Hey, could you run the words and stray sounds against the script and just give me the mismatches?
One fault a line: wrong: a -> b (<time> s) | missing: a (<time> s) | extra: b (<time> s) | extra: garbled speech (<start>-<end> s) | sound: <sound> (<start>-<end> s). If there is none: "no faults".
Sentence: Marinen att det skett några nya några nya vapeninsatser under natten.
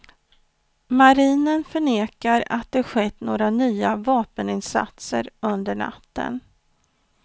extra: förnekar (1.6 s)
missing: några nya (4.0 s)